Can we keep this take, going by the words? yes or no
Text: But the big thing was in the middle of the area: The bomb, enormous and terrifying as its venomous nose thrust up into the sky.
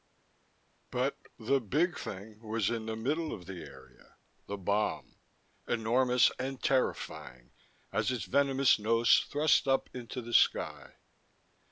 yes